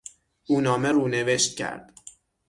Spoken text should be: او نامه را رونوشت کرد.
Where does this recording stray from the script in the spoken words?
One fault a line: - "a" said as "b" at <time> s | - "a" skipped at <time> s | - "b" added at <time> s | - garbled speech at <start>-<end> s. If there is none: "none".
- "را" skipped at 0.9 s